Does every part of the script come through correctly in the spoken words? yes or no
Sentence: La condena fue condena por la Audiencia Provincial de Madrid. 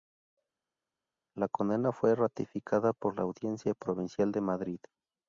no